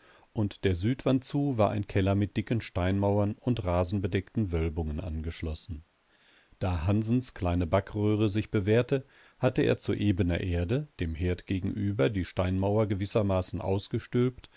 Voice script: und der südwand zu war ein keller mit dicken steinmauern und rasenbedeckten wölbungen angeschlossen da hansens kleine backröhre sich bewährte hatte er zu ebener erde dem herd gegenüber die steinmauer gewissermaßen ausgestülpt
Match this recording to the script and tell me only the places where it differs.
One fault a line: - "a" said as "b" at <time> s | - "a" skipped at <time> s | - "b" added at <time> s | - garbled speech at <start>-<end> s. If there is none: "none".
none